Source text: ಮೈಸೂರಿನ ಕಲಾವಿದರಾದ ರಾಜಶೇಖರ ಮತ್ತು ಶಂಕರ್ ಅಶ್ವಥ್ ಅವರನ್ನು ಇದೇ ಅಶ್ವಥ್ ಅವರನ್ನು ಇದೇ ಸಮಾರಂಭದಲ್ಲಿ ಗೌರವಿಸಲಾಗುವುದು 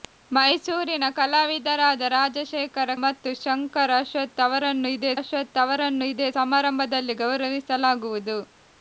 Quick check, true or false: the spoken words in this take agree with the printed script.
true